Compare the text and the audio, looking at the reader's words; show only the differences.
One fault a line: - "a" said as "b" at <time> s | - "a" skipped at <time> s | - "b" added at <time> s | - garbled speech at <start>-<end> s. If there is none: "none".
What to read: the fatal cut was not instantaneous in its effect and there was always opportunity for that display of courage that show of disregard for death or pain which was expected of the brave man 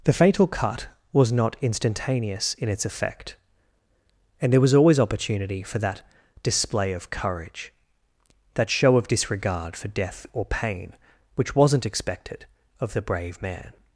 - "was" said as "wasn't" at 11.6 s